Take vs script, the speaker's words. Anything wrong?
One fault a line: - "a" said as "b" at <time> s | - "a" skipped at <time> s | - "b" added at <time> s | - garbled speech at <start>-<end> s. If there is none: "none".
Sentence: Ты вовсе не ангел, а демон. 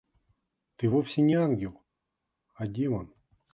none